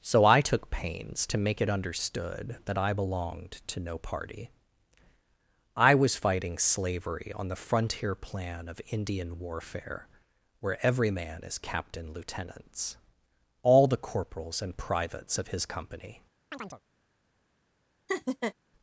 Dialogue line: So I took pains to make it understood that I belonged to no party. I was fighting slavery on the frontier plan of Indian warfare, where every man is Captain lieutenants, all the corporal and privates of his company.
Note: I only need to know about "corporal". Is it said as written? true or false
false